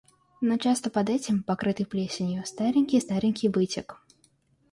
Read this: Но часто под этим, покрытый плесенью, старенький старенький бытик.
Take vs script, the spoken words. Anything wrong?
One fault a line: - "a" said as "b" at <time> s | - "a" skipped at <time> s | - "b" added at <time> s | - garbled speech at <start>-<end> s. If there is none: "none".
none